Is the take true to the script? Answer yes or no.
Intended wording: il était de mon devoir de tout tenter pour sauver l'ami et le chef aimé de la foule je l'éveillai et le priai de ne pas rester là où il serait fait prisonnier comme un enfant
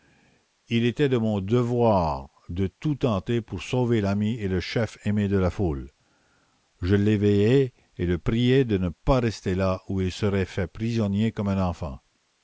yes